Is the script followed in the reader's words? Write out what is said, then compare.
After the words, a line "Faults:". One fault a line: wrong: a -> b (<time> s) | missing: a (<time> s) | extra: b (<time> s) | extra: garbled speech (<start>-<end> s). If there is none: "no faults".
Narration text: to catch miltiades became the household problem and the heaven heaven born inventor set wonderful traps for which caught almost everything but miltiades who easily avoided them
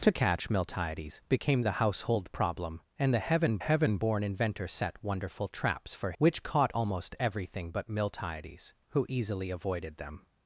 to catch miltiades became the household problem and the heaven heaven born inventor set wonderful traps for which caught almost everything but miltiades who easily avoided them
Faults:
no faults